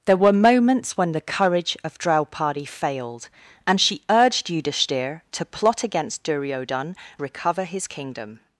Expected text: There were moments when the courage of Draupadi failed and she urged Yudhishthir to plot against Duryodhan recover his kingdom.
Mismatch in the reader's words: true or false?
false